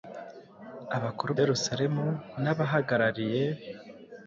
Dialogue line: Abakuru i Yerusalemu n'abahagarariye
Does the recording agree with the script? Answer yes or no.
yes